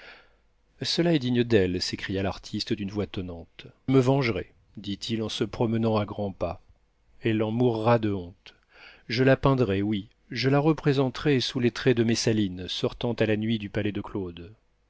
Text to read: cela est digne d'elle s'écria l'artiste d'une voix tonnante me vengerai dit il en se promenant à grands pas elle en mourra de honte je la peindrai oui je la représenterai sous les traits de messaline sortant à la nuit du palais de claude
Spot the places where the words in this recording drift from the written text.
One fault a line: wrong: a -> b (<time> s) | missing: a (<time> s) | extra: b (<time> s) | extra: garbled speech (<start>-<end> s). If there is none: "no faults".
no faults